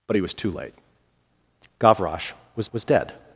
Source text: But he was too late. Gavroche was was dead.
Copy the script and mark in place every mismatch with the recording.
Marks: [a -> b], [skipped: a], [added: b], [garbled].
But he was too late. Gavroche was was dead.